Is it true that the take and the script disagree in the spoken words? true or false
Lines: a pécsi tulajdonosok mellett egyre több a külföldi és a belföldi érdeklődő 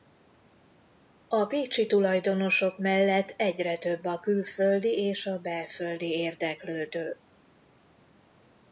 false